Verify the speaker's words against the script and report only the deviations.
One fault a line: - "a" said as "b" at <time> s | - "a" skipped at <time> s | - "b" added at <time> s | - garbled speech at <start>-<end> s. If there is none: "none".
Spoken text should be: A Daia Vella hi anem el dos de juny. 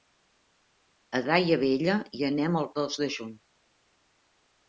none